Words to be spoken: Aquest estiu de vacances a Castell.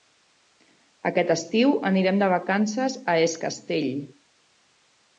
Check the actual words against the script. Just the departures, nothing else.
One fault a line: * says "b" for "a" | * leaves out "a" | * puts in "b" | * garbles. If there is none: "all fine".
* puts in "anirem"
* puts in "Es"